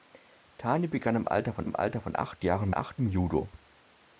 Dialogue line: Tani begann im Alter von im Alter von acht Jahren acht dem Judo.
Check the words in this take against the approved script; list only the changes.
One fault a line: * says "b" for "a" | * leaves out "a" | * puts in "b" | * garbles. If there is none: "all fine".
all fine